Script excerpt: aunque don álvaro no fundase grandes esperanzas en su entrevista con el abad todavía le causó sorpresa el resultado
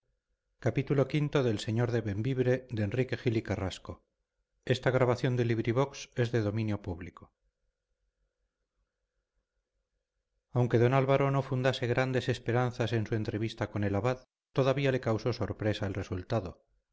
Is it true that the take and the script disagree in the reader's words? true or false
false